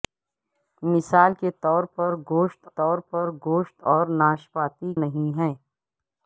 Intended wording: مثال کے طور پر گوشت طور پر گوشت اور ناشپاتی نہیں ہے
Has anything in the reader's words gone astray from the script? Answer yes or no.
no